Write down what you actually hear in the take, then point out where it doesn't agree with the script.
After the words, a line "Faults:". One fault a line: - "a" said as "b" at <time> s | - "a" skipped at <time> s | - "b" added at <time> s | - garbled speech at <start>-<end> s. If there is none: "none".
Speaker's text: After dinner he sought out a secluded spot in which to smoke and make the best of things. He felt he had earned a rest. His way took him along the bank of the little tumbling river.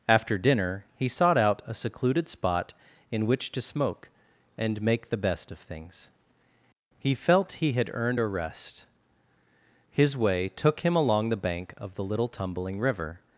After dinner he sought out a secluded spot in which to smoke and make the best of things. He felt he had earned a rest. His way took him along the bank of the little tumbling river.
Faults:
none